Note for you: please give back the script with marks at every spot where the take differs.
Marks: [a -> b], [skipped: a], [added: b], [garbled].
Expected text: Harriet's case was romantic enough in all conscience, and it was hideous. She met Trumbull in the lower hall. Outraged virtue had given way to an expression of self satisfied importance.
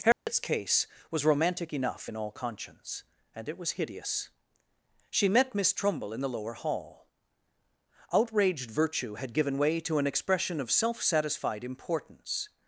Harriet's case was romantic enough in all conscience, and it was hideous. She met [added: Miss] Trumbull in the lower hall. Outraged virtue had given way to an expression of self satisfied importance.